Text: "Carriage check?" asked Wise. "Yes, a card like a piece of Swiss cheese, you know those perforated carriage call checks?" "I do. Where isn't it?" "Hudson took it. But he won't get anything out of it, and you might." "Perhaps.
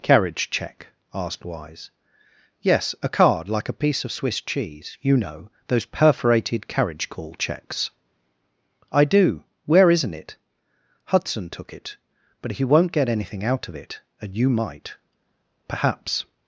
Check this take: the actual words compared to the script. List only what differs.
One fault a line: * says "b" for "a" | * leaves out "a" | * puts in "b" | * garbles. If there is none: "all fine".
all fine